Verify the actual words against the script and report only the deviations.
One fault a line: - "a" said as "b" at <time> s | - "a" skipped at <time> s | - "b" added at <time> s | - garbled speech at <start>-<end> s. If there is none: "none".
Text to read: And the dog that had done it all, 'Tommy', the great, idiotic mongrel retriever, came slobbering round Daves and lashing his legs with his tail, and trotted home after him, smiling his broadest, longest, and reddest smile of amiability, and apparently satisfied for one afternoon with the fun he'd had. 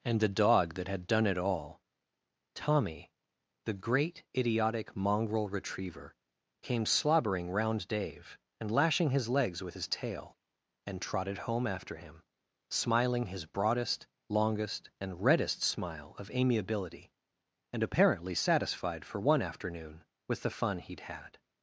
- "Daves" said as "Dave" at 7.9 s